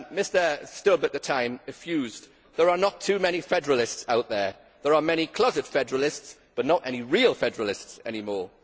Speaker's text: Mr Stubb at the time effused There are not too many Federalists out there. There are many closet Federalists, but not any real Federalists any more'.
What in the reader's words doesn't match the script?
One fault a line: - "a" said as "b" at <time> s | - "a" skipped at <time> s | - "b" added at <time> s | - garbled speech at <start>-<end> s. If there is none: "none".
none